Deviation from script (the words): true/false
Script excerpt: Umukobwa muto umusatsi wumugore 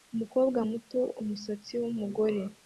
false